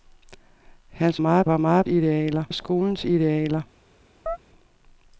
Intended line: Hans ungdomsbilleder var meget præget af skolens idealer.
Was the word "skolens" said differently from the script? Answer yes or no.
no